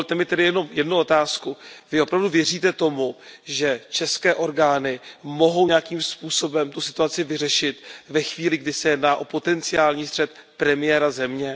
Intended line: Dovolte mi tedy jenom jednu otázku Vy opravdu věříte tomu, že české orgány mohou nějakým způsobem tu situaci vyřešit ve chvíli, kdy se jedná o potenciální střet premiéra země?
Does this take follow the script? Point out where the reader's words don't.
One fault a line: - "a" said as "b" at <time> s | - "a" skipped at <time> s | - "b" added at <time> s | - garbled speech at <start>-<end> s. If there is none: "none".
none